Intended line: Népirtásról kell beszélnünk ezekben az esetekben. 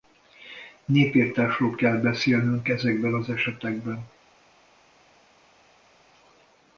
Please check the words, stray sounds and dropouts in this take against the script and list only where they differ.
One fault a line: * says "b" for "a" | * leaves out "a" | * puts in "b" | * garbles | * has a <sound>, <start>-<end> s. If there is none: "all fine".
all fine